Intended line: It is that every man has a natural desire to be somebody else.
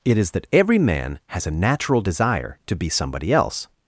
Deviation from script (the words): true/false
false